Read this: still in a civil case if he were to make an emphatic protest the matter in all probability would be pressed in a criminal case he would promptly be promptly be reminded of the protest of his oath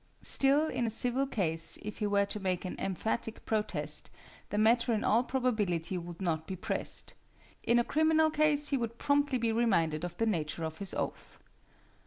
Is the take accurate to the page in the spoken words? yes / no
no